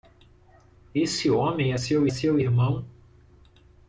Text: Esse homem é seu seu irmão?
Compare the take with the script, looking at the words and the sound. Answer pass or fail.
pass